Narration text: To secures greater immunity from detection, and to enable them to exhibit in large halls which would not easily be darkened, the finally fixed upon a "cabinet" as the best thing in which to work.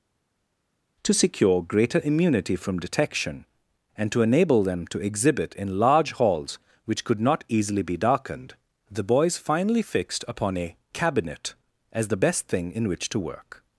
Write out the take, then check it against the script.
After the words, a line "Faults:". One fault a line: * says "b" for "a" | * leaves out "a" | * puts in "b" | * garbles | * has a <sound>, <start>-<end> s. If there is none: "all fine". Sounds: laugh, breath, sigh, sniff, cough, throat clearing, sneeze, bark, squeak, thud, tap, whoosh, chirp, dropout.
To secure greater immunity from detection, and to enable them to exhibit in large halls which could not easily be darkened, the boys finally fixed upon a "cabinet" as the best thing in which to work.
Faults:
* says "secure" for "secures"
* says "could" for "would"
* puts in "boys"